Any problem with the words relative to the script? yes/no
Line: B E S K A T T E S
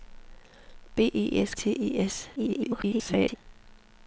yes